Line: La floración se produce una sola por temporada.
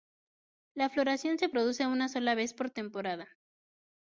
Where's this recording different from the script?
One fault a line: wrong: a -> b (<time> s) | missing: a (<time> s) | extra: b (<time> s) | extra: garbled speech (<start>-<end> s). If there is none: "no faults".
extra: vez (2.3 s)